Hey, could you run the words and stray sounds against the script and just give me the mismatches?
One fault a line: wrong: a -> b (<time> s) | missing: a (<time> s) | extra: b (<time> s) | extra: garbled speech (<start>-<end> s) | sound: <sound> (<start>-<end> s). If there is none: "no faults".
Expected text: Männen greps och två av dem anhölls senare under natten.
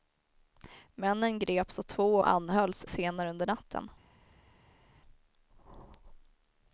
missing: av dem (2.2 s)